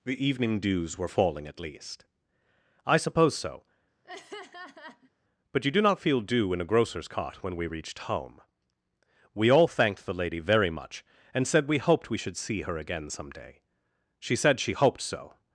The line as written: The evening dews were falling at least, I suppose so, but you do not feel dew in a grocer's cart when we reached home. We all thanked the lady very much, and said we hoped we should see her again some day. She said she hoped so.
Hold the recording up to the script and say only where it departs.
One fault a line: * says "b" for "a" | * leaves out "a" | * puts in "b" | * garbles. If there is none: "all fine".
all fine